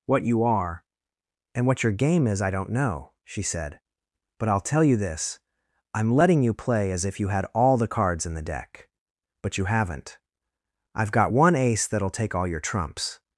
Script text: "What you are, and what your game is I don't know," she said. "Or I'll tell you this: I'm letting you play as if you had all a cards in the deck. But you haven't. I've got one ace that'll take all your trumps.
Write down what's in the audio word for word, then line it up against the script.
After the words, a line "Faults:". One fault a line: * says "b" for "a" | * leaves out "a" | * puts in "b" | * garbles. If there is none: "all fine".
"What you are, and what your game is I don't know," she said. "But I'll tell you this: I'm letting you play as if you had all the cards in the deck. But you haven't. I've got one ace that'll take all your trumps.
Faults:
* says "But" for "Or"
* says "the" for "a"